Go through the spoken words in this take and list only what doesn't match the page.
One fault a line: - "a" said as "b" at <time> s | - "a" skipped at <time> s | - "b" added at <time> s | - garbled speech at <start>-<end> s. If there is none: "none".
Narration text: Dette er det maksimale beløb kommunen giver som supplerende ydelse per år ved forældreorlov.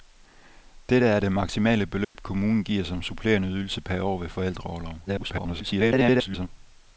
- garbled speech at 5.1-6.5 s